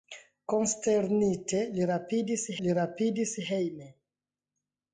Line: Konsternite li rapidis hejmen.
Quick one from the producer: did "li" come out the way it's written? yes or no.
yes